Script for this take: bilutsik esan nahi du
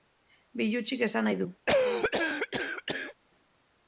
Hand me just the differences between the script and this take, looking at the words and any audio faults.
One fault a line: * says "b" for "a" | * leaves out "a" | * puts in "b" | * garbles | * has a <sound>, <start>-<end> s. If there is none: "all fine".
* has a cough, 1.7-3.2 s